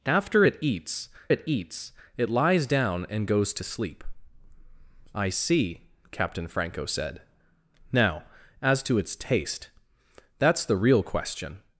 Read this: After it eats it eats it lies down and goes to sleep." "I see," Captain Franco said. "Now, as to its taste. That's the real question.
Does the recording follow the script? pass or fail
pass